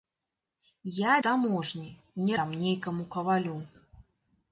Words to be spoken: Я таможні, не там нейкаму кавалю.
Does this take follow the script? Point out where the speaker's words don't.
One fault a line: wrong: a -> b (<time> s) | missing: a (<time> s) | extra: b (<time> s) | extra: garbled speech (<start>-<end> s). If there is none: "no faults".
no faults